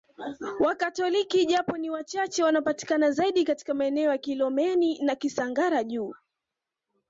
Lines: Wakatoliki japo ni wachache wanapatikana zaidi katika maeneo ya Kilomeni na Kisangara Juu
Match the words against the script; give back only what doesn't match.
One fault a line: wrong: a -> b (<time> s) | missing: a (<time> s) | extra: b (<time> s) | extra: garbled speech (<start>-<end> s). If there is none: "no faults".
no faults